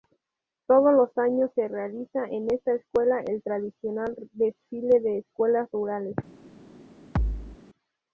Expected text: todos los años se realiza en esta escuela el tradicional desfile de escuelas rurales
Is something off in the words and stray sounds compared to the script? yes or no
yes